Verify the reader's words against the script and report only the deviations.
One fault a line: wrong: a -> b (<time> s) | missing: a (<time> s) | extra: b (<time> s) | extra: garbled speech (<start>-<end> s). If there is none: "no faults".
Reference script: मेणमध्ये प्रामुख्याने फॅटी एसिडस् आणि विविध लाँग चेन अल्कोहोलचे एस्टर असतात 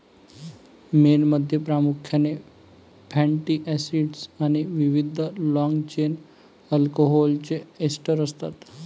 no faults